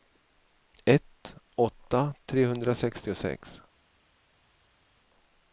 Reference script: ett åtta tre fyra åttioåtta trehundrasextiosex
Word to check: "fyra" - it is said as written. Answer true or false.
false